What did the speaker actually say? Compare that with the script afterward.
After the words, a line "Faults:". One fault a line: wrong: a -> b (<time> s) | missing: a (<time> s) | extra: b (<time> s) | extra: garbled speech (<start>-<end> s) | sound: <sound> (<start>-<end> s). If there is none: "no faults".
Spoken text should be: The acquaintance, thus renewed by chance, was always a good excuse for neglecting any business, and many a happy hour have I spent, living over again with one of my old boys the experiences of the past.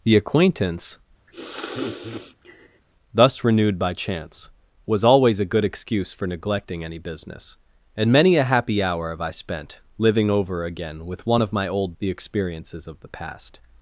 The acquaintance, thus renewed by chance, was always a good excuse for neglecting any business, and many a happy hour have I spent, living over again with one of my old the experiences of the past.
Faults:
sound: sniff (1.3-2.8 s)
missing: boys (12.0 s)